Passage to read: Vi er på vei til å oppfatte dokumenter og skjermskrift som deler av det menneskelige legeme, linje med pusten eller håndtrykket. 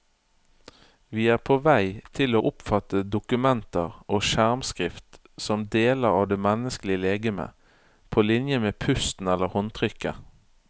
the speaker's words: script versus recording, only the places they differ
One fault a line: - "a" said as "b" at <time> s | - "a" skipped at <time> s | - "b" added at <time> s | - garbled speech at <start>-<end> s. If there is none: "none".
- "på" added at 8.1 s